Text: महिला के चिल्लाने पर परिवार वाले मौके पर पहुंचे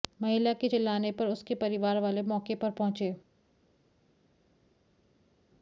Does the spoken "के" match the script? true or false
true